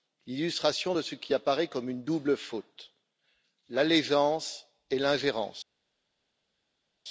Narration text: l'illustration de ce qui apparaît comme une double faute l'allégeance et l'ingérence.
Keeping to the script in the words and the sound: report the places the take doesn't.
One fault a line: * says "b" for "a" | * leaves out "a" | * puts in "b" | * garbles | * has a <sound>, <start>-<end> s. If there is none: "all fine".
all fine